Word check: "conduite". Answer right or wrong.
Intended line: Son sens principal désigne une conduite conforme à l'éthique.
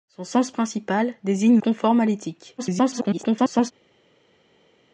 wrong